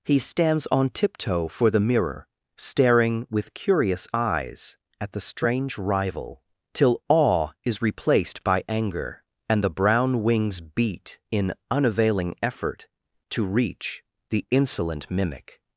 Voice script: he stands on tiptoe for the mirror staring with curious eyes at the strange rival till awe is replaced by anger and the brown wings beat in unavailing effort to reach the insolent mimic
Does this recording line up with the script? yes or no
yes